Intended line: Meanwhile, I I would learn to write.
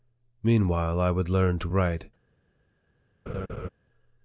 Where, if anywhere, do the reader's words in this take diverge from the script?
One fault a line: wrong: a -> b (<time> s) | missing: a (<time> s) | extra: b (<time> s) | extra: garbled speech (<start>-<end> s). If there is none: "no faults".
missing: I (1.1 s)